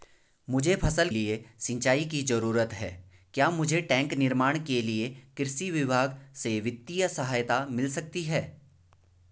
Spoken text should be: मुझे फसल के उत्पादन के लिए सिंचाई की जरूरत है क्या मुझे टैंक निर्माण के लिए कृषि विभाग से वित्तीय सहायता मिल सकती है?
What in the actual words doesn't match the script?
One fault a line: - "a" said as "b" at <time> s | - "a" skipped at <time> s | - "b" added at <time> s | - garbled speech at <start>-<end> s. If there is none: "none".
- "के उत्पादन के" skipped at 1.1 s